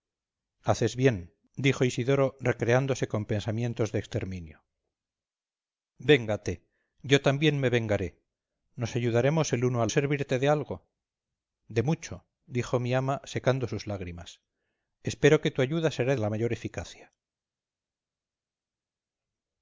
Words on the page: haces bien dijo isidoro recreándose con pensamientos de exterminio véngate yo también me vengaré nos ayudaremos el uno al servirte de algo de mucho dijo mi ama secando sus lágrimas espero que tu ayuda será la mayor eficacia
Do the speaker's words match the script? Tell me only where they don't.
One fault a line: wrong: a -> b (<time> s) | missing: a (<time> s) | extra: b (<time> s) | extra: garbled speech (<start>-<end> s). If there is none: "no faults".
no faults